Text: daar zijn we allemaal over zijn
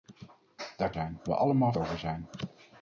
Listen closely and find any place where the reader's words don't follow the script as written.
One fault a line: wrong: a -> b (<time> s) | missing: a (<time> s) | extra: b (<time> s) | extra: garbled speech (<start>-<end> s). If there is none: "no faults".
no faults